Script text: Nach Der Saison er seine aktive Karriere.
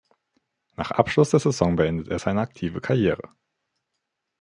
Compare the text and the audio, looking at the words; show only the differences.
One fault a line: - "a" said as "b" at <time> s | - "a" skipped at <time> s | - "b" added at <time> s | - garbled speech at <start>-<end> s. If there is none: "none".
- "Abschluss" added at 0.9 s
- "beendete" added at 1.8 s